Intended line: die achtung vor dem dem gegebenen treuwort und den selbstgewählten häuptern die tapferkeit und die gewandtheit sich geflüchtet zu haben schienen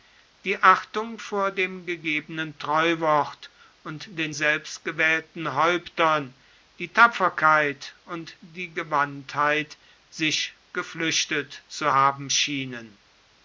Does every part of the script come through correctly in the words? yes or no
no